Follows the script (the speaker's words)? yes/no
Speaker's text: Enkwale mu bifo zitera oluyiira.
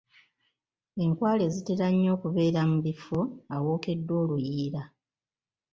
no